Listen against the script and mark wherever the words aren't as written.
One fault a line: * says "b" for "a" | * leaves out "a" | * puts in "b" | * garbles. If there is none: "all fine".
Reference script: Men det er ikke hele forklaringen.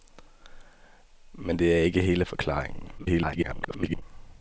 * garbles